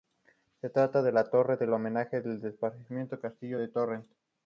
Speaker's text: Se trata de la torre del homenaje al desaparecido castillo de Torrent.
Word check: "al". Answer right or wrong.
wrong